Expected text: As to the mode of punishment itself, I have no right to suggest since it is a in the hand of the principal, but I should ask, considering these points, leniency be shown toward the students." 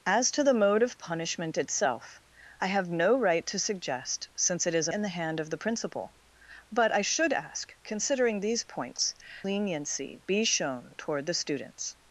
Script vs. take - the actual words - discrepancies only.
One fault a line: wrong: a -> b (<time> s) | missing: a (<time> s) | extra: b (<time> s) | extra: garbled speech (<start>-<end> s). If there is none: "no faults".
no faults